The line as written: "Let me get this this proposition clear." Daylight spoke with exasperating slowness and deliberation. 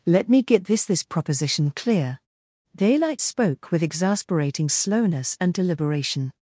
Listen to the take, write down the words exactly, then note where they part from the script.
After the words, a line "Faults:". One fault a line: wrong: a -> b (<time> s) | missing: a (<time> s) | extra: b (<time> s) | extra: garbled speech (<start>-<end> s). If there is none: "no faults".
"Let me get this this proposition clear." Daylight spoke with exasperating slowness and deliberation.
Faults:
no faults